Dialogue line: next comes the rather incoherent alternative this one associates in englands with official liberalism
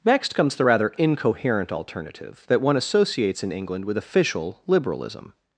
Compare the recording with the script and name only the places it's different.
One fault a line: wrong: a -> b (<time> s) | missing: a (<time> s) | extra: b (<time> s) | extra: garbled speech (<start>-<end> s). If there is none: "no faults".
wrong: this -> that (2.5 s)
wrong: englands -> england (3.5 s)